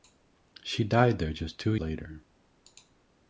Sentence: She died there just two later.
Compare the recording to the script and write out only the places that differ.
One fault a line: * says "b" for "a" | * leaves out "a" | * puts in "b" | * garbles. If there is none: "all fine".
all fine